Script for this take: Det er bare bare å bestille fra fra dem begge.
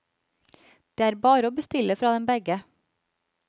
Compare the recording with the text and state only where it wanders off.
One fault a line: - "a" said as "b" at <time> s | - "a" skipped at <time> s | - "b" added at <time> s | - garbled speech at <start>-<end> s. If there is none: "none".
- "bare" skipped at 1.5 s
- "fra" skipped at 2.1 s